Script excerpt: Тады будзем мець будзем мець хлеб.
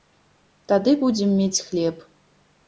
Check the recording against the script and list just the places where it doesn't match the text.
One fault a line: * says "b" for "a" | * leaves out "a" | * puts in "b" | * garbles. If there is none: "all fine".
* leaves out "будзем мець"